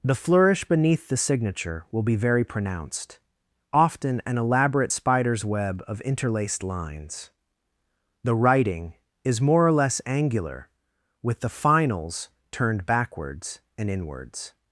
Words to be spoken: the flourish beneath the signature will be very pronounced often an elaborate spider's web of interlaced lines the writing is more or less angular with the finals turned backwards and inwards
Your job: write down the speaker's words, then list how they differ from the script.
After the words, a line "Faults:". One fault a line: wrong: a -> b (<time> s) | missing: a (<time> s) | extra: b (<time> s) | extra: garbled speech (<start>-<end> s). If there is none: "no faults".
the flourish beneath the signature will be very pronounced often an elaborate spider's web of interlaced lines the writing is more or less angular with the finals turned backwards and inwards
Faults:
no faults